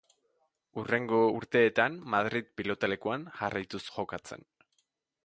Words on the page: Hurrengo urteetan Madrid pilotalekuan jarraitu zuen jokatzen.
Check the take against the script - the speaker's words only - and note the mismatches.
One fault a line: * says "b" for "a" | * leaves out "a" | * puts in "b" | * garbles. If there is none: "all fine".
* leaves out "zuen"